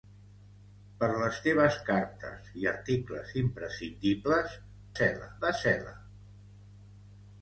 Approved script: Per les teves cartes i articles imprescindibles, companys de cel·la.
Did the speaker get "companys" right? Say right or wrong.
wrong